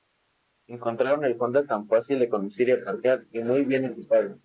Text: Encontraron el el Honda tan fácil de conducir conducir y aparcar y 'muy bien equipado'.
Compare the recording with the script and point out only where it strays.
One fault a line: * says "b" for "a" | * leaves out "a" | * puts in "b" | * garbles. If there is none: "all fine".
* leaves out "el"
* leaves out "conducir"